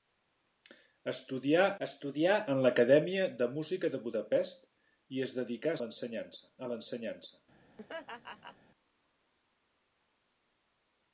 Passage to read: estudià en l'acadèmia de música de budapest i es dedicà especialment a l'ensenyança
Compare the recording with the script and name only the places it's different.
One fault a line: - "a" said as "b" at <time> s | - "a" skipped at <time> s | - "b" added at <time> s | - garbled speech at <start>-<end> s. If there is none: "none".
- "estudià" added at 1.9 s
- "especialment" said as "l'ensenyança" at 5.8 s